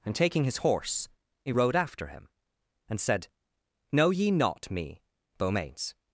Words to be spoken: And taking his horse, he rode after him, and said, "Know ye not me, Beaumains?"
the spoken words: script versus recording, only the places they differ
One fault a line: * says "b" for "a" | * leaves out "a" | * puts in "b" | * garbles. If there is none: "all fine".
all fine